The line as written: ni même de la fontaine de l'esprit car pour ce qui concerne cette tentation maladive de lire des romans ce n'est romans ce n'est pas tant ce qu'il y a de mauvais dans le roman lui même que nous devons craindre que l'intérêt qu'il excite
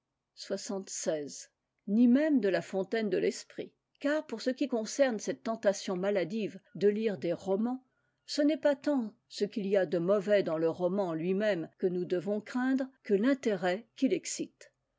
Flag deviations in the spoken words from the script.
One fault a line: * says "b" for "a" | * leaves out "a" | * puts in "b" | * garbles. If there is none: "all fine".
* leaves out "romans ce n'est"